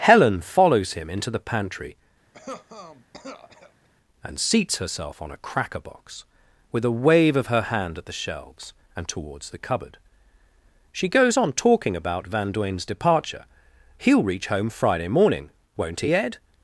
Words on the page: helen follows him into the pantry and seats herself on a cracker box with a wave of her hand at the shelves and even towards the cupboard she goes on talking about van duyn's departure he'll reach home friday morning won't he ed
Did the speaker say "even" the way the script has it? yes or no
no